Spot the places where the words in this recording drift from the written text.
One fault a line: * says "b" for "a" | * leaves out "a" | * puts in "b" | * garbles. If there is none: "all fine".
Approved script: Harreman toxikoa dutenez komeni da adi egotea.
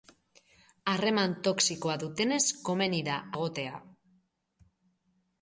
* leaves out "adi"